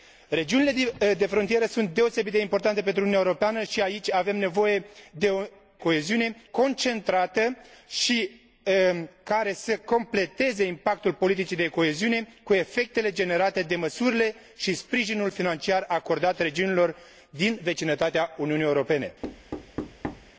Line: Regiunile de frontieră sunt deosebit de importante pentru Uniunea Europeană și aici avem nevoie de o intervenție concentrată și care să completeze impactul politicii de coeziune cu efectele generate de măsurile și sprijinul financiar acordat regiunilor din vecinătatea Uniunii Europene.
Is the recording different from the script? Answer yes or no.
yes